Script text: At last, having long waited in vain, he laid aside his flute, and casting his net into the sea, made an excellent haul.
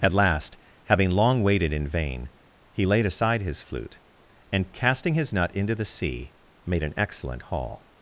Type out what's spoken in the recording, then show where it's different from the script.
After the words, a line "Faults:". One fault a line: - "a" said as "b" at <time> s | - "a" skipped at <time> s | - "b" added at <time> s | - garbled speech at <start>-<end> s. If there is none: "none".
At last, having long waited in vain, he laid aside his flute, and casting his nut into the sea, made an excellent haul.
Faults:
- "net" said as "nut" at 5.3 s